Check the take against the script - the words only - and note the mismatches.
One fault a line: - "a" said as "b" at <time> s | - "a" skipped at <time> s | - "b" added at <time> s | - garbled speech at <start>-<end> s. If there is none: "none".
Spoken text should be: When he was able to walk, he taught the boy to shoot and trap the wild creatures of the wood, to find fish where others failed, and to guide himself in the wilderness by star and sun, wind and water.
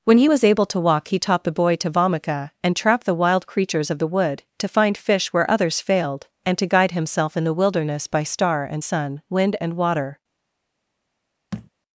- "shoot" said as "vomica" at 1.9 s